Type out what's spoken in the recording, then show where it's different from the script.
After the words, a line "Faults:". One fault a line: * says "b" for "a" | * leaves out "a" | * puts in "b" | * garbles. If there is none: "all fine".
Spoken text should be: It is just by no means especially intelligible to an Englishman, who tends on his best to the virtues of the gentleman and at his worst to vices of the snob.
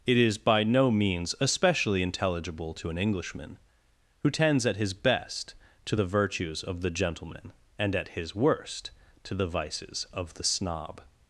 It is by no means especially intelligible to an Englishman, who tends at his best to the virtues of the gentleman and at his worst to the vices of the snob.
Faults:
* leaves out "just"
* says "at" for "on"
* puts in "the"